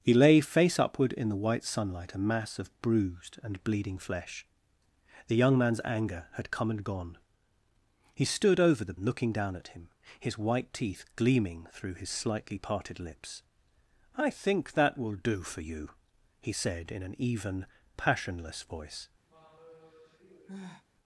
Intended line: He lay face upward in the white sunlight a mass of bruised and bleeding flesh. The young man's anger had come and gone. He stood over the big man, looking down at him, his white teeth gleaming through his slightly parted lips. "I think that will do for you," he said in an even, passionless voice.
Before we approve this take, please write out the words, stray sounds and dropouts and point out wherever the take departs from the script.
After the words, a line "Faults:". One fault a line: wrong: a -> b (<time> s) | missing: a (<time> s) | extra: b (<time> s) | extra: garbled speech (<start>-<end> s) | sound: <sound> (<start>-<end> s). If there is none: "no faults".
He lay face upward in the white sunlight a mass of bruised and bleeding flesh. The young man's anger had come and gone. He stood over the looking down at him, his white teeth gleaming through his slightly parted lips. "I think that will do for you," he said in an even, passionless voice.
Faults:
missing: big man (8.9 s)
sound: sigh (19.3-20.8 s)